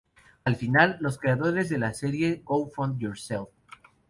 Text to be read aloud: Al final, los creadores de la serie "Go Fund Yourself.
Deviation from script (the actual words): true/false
false